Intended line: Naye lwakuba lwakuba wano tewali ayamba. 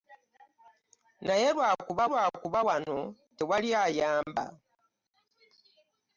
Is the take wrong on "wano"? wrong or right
right